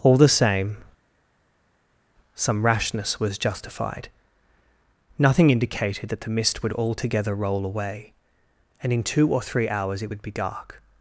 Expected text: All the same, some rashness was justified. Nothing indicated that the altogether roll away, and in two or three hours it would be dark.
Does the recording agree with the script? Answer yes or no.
no